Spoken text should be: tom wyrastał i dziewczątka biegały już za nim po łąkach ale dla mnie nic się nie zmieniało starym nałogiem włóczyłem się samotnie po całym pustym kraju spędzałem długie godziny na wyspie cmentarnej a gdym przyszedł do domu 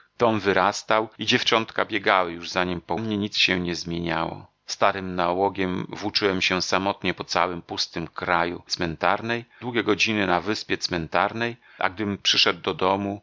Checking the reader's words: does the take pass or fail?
fail